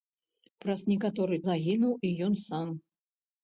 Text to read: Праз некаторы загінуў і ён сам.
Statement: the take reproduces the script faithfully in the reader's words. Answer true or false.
true